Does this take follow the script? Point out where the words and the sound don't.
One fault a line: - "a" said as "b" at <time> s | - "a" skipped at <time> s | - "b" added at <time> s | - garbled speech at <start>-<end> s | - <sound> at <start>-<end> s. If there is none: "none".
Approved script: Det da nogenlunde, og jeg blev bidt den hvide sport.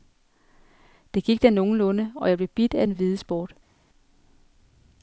- "gik" added at 1.2 s
- "af" added at 2.7 s